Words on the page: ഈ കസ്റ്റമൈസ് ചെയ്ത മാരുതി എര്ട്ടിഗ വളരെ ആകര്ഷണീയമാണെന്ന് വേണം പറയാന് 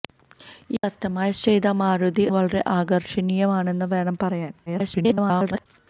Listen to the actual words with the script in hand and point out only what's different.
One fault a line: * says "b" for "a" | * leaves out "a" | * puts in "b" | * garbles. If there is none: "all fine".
* leaves out "എര്ട്ടിഗ"
* garbles